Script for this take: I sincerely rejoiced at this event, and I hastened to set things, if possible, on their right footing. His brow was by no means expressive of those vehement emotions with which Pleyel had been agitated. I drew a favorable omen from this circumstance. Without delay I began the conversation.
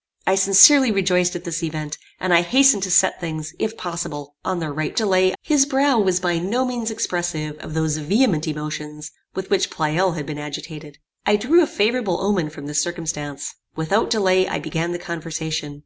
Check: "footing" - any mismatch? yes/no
yes